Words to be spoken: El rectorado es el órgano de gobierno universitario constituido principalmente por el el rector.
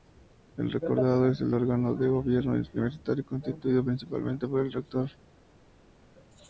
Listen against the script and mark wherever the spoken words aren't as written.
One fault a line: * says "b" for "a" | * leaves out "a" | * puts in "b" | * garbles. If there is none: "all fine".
* leaves out "el"